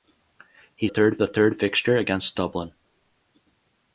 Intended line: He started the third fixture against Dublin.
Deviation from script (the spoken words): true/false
true